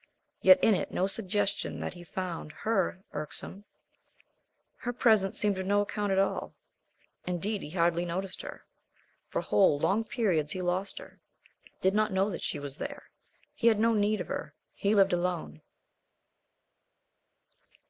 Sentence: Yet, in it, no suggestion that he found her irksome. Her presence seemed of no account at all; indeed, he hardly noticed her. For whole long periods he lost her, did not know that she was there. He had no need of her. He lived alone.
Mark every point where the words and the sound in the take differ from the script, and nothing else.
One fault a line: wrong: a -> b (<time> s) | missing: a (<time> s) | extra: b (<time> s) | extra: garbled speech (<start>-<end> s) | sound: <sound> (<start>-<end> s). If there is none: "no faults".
no faults